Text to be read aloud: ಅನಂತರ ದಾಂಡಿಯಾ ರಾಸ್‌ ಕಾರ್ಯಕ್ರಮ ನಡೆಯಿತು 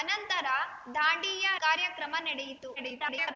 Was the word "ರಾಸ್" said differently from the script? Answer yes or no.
yes